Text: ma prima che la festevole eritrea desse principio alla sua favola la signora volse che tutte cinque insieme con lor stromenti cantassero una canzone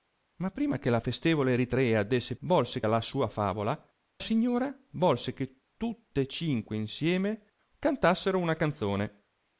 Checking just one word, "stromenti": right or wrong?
wrong